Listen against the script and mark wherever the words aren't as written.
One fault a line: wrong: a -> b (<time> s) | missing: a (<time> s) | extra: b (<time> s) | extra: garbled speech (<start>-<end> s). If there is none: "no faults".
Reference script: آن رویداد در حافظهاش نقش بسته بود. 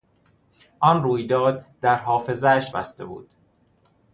missing: نقش (2.8 s)